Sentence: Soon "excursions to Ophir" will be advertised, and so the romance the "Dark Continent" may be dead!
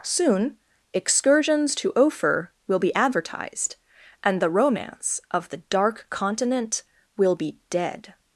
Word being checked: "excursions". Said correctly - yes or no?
yes